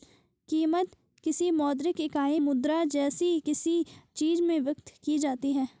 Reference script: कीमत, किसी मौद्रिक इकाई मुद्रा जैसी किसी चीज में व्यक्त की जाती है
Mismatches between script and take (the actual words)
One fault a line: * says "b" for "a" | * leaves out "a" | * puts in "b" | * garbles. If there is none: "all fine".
all fine